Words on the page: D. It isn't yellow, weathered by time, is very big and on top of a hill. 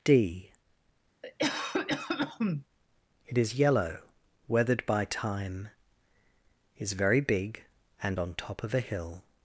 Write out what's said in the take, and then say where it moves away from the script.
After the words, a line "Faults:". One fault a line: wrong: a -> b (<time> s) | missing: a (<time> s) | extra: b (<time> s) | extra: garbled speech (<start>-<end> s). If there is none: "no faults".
D. It is yellow, weathered by time, is very big and on top of a hill.
Faults:
wrong: isn't -> is (3.4 s)